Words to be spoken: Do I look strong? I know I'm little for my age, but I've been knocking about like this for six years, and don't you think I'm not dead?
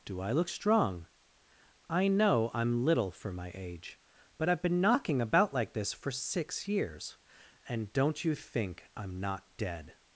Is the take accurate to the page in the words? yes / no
yes